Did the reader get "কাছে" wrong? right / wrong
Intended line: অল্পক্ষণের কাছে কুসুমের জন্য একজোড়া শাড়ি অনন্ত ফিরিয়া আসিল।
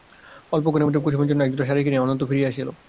wrong